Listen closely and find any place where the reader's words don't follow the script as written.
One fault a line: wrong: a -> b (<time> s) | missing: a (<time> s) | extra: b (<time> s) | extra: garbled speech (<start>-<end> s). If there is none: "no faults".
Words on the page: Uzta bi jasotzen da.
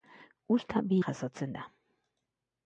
no faults